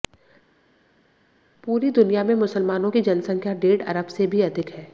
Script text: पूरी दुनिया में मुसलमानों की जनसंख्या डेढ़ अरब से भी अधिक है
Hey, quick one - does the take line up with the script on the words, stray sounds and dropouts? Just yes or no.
yes